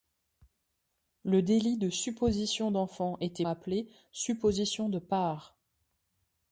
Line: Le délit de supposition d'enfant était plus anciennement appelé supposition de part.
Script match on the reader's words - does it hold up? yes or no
no